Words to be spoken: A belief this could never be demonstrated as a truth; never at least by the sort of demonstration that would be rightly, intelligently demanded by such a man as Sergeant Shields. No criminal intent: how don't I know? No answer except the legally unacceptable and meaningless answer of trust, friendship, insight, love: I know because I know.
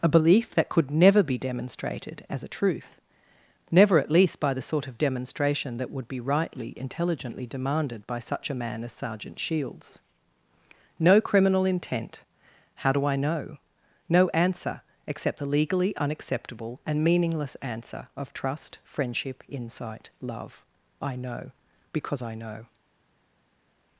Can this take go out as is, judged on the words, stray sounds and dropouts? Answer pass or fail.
fail